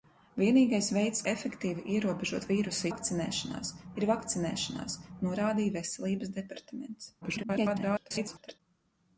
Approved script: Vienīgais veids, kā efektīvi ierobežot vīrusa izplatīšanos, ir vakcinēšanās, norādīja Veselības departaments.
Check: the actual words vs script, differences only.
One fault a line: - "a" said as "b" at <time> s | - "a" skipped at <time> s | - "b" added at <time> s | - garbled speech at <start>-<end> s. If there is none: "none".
- "kā" skipped at 1.2 s
- "izplatīšanos" said as "vakcinēšanās" at 2.9 s
- garbled speech at 7.2-8.6 s